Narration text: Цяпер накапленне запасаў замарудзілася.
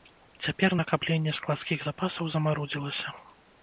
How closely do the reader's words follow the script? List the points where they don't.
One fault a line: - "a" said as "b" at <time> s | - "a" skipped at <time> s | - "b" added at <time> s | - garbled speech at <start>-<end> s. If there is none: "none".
- "складскіх" added at 1.4 s